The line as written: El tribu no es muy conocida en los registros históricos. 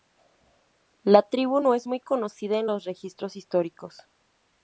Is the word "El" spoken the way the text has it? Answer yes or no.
no